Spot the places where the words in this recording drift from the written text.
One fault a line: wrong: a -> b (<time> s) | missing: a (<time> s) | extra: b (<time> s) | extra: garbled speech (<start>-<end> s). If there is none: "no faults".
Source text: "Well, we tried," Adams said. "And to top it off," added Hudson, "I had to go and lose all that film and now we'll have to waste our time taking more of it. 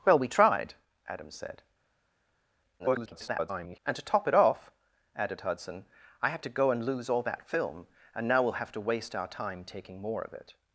extra: garbled speech (2.8-3.8 s)